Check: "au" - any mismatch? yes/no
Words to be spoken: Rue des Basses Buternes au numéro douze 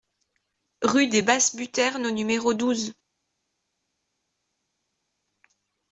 no